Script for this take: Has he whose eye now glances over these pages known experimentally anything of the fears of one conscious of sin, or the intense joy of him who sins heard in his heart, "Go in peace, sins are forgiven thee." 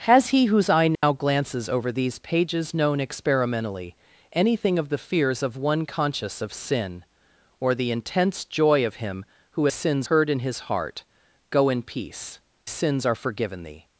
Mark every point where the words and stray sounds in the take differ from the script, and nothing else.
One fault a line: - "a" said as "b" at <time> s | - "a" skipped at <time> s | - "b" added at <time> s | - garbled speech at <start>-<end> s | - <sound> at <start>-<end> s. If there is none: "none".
- dropout at 0.9-1.0 s